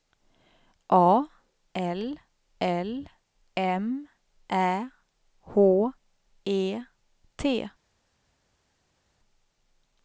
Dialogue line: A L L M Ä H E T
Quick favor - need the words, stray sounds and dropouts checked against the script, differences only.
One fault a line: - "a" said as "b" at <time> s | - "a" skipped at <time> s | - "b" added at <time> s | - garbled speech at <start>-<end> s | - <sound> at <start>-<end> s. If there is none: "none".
none